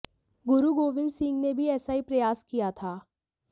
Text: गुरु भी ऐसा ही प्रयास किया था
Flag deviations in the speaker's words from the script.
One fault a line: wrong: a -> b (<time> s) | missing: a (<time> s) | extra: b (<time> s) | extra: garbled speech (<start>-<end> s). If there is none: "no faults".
extra: गोविंद सिंह ने (0.7 s)